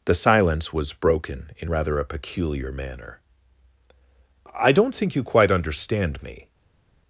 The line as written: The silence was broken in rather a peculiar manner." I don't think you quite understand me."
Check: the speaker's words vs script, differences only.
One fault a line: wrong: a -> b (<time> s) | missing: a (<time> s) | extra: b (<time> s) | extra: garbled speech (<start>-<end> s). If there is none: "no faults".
no faults